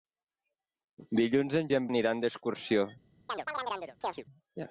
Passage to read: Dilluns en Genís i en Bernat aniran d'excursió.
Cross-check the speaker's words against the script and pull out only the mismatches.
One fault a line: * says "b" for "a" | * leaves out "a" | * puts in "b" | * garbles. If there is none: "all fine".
* leaves out "Genís"
* leaves out "Bernat"